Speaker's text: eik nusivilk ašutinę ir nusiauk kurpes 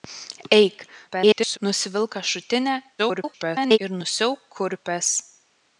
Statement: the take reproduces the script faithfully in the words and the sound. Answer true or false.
false